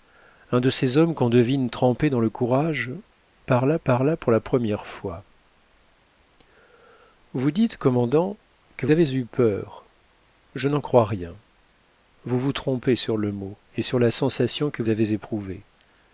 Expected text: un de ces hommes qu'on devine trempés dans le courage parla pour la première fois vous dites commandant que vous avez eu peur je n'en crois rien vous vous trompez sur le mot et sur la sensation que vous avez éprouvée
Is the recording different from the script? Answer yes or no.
yes